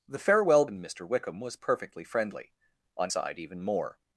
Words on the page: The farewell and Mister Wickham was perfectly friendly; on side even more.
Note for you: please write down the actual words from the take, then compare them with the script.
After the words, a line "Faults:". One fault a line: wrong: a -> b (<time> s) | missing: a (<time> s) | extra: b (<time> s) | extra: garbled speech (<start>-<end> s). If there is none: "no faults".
The farewell and Mister Wickham was perfectly friendly; on side even more.
Faults:
no faults